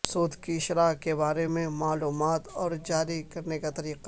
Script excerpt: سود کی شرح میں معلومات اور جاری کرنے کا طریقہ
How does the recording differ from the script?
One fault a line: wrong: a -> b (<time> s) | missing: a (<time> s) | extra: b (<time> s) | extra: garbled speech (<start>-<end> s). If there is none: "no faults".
extra: کے بارے (0.9 s)